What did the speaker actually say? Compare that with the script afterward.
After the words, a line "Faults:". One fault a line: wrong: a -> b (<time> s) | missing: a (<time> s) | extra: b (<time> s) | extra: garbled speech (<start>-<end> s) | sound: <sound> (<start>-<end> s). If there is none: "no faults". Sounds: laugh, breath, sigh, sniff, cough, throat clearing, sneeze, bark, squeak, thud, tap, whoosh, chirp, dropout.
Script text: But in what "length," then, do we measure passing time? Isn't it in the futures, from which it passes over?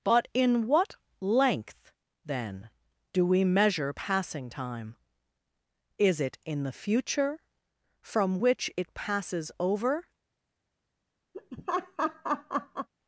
But in what "length," then, do we measure passing time? Is it in the future, from which it passes over?
Faults:
wrong: Isn't -> Is (6.0 s)
wrong: futures -> future (6.7 s)
sound: laugh (11.3-12.9 s)